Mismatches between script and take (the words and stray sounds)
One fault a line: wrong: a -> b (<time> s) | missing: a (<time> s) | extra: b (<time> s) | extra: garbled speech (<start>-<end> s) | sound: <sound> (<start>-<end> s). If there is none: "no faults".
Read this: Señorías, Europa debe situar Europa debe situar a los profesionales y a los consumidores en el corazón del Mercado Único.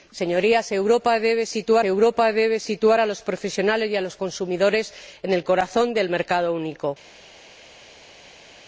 no faults